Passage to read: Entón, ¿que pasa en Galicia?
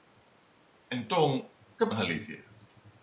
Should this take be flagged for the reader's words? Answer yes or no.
yes